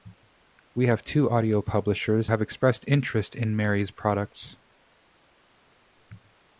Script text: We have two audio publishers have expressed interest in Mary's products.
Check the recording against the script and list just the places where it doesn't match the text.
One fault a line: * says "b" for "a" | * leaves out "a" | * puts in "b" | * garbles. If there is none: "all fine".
all fine